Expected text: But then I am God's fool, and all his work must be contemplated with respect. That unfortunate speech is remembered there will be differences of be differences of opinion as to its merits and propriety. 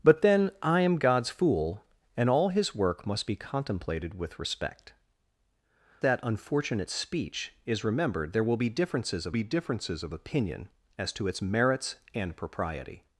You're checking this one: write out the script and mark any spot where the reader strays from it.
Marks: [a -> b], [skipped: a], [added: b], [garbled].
But then I am God's fool, and all his work must be contemplated with respect. That unfortunate speech is remembered there will be differences of be differences of opinion as to its merits and propriety.